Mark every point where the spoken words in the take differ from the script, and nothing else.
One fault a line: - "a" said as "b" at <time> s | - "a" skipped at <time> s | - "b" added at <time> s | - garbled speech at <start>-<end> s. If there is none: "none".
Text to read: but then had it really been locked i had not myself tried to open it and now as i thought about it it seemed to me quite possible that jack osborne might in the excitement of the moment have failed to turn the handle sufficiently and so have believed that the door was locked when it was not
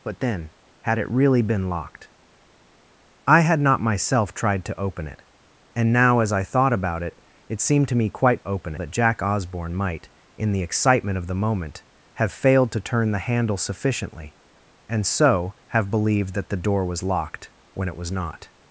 - "possible" said as "open" at 8.5 s